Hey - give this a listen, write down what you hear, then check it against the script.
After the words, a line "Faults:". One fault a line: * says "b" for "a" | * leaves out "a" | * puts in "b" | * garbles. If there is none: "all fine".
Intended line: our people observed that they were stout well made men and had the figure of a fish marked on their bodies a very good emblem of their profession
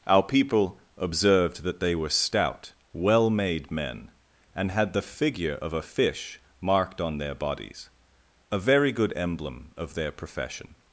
our people observed that they were stout well made men and had the figure of a fish marked on their bodies a very good emblem of their profession
Faults:
all fine